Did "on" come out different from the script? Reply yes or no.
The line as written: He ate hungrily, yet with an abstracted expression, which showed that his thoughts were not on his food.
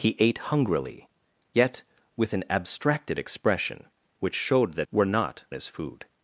yes